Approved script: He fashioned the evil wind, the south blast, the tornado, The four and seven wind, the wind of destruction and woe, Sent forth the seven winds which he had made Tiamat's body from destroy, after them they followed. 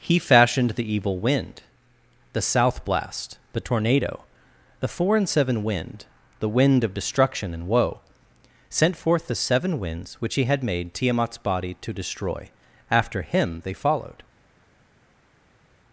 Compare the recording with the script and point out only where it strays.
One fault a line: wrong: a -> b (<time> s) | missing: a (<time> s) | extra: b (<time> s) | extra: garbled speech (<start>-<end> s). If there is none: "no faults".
wrong: from -> to (11.8 s)
wrong: them -> him (13.2 s)